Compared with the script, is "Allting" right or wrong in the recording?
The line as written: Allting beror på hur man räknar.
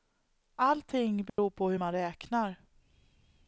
right